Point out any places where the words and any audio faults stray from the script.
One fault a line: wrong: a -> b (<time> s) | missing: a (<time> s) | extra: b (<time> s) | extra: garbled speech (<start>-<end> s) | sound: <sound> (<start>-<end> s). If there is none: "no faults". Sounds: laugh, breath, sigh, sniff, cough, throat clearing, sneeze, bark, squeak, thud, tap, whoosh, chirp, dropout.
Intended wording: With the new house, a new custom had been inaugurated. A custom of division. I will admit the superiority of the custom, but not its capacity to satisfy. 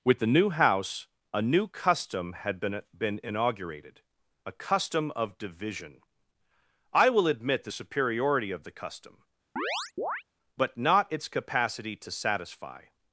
extra: been (3.0 s)
sound: chirp (9.6-10.2 s)